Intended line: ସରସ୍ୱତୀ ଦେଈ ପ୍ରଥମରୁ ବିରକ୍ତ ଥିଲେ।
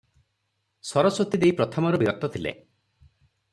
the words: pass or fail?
pass